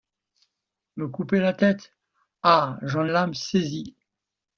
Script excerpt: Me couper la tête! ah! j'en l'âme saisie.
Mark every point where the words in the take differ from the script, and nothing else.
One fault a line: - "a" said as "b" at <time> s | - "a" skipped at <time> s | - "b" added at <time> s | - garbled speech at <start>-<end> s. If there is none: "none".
none